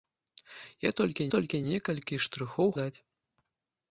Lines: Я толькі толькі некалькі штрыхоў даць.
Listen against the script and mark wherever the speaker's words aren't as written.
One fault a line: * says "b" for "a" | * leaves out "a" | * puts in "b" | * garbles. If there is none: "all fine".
all fine